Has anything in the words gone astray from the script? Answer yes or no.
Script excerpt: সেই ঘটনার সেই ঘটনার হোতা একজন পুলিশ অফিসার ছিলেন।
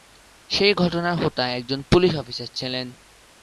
yes